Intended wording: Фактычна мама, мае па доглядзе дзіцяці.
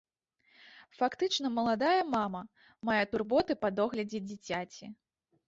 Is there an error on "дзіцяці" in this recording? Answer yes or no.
no